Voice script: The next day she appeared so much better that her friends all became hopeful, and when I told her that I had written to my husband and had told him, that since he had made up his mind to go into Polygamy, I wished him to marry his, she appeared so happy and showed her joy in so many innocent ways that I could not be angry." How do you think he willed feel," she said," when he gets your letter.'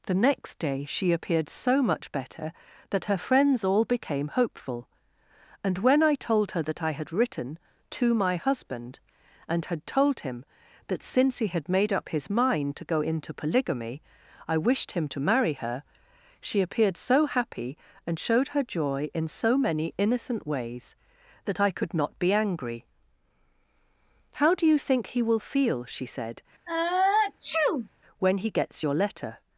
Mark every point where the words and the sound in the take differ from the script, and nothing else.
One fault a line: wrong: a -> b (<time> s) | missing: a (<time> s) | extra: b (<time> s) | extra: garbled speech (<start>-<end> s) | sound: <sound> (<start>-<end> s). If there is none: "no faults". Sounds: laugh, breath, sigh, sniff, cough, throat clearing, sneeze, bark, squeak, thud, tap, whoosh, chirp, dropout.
wrong: his -> her (15.5 s)
wrong: willed -> will (25.2 s)
sound: sneeze (26.7-27.9 s)